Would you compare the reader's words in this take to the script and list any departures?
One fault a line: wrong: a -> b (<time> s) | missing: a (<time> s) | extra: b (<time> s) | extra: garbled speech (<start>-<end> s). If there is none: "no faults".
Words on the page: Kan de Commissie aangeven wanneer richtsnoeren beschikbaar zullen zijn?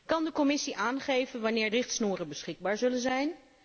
no faults